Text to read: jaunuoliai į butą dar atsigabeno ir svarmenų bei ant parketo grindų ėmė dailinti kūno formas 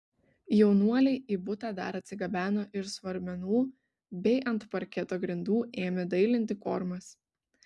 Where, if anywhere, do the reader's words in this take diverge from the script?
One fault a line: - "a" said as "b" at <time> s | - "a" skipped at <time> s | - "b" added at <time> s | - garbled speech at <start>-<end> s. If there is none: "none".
- "kūno" skipped at 6.6 s